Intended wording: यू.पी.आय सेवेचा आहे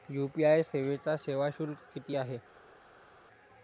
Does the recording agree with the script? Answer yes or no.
no